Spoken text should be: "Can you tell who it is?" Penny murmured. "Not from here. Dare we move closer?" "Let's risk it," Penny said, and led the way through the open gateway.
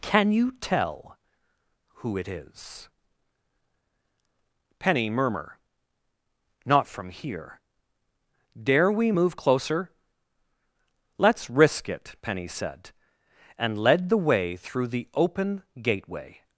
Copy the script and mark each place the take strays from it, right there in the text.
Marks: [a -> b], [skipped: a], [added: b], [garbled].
"Can you tell who it is?" Penny [murmured. -> murmur] "Not from here. Dare we move closer?" "Let's risk it," Penny said, and led the way through the open gateway.